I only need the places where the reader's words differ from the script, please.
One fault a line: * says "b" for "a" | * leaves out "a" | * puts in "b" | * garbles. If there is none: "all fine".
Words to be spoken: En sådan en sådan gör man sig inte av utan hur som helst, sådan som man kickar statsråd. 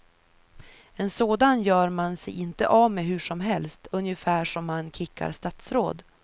* leaves out "en sådan"
* says "med" for "utan"
* says "ungefär" for "sådan"